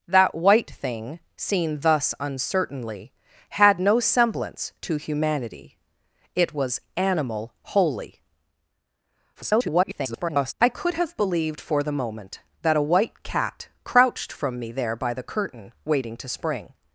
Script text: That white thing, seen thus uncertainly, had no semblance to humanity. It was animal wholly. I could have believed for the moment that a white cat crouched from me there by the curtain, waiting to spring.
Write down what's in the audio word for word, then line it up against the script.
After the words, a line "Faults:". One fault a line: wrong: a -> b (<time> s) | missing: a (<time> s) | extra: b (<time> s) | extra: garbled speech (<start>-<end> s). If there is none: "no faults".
That white thing, seen thus uncertainly, had no semblance to humanity. It was animal wholly. [garbled] I could have believed for the moment that a white cat crouched from me there by the curtain, waiting to spring.
Faults:
extra: garbled speech (9.4-10.5 s)